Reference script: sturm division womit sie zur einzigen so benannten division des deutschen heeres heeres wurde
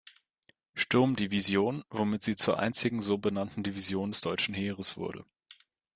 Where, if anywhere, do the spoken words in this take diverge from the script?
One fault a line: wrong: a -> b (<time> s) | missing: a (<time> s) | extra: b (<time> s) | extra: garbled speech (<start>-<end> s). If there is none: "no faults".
missing: heeres (5.0 s)